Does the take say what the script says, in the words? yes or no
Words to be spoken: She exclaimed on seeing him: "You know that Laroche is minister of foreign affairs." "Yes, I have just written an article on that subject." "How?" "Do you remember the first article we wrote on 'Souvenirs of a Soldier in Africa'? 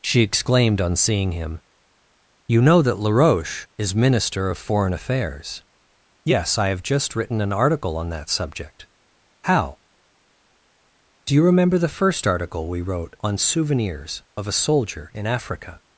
yes